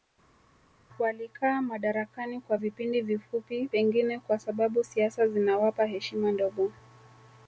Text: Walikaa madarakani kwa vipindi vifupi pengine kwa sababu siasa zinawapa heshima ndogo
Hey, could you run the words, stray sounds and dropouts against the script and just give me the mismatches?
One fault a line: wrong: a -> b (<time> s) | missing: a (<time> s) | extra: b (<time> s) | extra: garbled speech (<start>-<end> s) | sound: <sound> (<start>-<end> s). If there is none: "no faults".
no faults